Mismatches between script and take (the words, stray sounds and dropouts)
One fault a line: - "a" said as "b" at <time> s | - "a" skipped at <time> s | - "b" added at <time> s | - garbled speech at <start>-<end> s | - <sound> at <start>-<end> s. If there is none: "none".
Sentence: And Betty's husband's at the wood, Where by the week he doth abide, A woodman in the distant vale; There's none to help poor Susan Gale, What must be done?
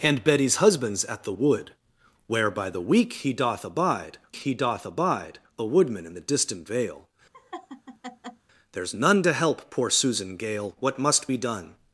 - "he doth abide" added at 4.3 s
- laugh at 7.3-8.5 s